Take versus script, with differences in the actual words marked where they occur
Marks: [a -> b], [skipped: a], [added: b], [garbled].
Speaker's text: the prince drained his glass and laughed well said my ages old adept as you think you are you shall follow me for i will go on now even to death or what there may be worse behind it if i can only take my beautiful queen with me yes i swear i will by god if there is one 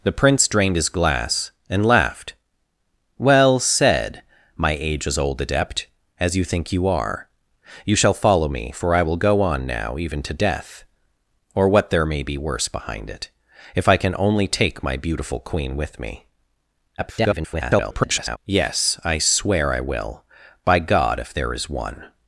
the prince drained his glass and laughed well said my ages old adept as you think you are you shall follow me for i will go on now even to death or what there may be worse behind it if i can only take my beautiful queen with me [garbled] yes i swear i will by god if there is one